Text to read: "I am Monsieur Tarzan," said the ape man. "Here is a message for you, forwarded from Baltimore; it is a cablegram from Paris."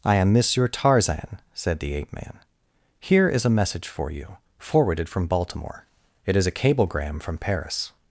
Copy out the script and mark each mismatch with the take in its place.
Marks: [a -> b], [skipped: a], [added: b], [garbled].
"I am Monsieur Tarzan," said the ape man. "Here is a message for you, forwarded from Baltimore; it is a cablegram from Paris."